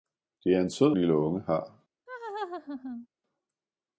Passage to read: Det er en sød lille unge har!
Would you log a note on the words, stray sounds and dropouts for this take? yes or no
yes